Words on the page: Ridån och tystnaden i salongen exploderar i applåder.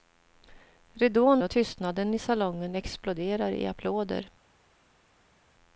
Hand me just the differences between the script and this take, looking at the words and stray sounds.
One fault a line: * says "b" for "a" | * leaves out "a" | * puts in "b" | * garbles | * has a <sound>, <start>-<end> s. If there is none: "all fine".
all fine